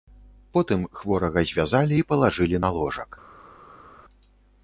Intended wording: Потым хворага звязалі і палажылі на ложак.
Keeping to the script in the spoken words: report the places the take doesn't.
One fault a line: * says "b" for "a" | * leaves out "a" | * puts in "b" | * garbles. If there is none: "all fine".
all fine